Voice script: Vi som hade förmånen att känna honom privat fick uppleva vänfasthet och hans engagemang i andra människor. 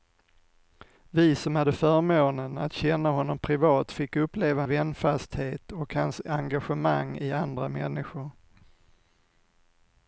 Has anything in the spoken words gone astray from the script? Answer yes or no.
no